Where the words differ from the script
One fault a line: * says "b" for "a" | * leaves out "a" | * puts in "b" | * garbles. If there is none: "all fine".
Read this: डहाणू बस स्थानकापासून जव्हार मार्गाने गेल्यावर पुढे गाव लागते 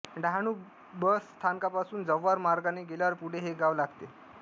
* puts in "हे"